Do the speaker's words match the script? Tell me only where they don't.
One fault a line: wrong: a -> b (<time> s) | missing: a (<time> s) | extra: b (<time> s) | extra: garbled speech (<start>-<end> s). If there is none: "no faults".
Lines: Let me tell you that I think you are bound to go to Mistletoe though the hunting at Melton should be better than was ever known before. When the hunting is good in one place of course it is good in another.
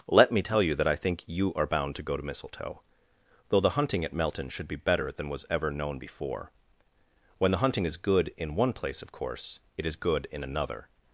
no faults